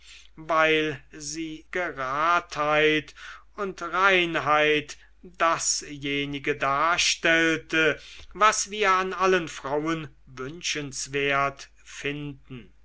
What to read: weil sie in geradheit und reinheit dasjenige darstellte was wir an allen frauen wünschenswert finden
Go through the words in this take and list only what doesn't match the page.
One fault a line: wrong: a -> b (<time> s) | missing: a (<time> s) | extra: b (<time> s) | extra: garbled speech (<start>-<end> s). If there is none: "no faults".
missing: in (1.6 s)